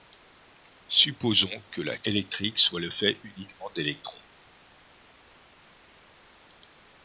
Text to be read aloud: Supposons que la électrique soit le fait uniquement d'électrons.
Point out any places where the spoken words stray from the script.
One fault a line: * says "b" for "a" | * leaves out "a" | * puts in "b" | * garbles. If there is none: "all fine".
all fine